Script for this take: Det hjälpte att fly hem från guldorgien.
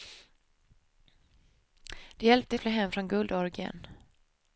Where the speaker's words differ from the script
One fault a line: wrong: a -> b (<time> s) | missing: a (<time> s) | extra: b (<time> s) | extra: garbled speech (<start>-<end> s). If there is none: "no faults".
no faults